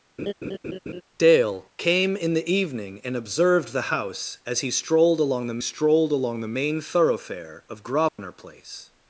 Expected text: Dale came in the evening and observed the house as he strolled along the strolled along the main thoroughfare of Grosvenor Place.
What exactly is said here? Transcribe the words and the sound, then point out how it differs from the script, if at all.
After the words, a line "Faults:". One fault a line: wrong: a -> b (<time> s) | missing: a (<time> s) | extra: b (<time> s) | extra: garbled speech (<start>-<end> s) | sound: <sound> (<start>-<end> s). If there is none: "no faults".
Dale came in the evening and observed the house as he strolled along the strolled along the main thoroughfare of Grosvenor Place.
Faults:
sound: laugh (0.2-1.0 s)
sound: dropout (8.1-8.2 s)